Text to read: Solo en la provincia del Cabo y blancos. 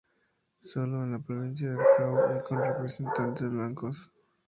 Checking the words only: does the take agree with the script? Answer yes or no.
no